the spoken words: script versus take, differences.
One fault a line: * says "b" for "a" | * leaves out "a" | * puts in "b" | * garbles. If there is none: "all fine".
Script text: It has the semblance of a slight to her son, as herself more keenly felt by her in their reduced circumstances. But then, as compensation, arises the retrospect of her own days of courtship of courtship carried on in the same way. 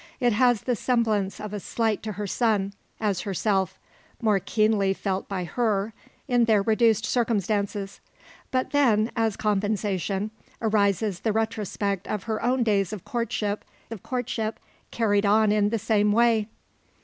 all fine